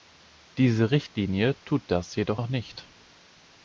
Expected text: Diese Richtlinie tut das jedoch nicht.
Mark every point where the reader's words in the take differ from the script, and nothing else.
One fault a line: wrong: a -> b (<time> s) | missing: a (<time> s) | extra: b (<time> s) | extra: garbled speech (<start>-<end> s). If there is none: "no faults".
extra: noch (2.3 s)